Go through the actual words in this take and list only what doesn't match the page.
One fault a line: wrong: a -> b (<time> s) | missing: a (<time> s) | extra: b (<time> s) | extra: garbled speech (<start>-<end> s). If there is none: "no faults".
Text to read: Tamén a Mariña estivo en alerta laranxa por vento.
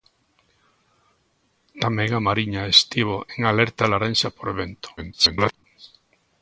extra: garbled speech (5.0-5.6 s)